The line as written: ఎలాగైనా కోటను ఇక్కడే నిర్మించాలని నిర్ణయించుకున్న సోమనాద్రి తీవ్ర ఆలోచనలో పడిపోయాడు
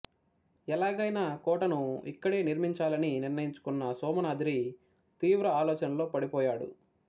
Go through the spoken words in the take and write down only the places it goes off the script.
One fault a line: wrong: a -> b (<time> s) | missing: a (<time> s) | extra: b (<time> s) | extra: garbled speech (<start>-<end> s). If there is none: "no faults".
no faults